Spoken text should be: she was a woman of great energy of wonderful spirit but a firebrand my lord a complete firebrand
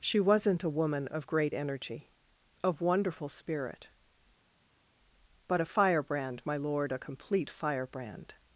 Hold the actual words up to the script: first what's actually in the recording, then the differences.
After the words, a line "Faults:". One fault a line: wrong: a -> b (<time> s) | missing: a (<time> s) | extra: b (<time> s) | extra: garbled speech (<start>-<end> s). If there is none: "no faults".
she wasn't a woman of great energy of wonderful spirit but a firebrand my lord a complete firebrand
Faults:
wrong: was -> wasn't (0.2 s)